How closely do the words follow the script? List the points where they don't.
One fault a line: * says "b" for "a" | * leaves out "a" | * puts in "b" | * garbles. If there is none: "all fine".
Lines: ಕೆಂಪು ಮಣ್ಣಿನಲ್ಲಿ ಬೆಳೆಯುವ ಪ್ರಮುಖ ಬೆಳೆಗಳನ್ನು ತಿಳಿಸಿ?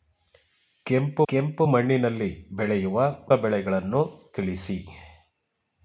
* puts in "ಕೆಂಪು"
* leaves out "ಪ್ರಮುಖ"